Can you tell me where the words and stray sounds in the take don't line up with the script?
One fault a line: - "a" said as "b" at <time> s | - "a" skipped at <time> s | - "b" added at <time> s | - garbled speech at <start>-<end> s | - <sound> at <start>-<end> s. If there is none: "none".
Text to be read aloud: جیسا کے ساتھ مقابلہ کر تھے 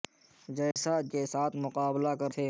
- dropout at 0.7-0.8 s